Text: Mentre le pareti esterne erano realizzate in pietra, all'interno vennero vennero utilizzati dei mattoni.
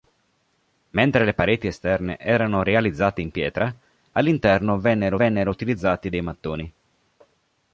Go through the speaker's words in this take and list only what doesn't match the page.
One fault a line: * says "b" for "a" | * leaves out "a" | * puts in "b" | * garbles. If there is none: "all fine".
all fine